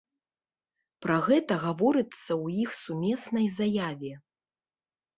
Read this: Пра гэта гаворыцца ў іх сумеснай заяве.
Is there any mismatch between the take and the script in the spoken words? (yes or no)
no